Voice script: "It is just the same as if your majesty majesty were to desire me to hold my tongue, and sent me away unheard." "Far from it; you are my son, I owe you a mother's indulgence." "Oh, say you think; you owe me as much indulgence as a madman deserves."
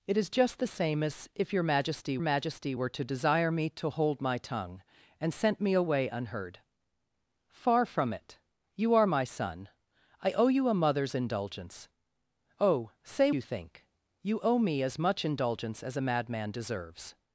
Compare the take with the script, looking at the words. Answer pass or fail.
pass